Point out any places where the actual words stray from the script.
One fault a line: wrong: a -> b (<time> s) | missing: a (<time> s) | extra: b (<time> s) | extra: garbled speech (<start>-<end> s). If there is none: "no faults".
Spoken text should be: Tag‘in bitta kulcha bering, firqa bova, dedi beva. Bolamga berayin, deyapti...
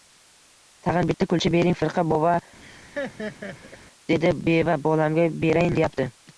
no faults